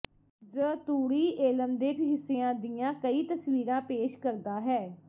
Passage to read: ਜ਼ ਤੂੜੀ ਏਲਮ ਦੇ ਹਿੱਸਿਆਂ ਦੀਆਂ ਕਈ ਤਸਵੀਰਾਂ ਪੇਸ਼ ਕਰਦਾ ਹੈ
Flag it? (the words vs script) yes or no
no